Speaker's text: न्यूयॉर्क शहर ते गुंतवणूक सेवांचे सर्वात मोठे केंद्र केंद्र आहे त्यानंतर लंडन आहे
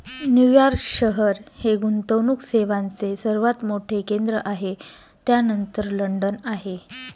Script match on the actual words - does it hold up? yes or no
no